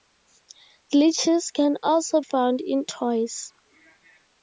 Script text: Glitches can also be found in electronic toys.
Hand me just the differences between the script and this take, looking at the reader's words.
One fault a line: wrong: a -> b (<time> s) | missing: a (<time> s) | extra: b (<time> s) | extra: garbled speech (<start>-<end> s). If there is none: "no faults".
missing: be (2.2 s)
missing: electronic (2.9 s)